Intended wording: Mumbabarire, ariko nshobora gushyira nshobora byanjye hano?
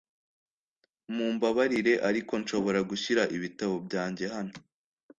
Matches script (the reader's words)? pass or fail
fail